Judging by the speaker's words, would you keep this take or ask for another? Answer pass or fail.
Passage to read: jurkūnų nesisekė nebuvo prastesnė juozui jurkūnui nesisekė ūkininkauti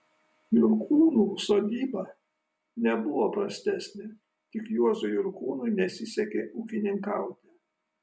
fail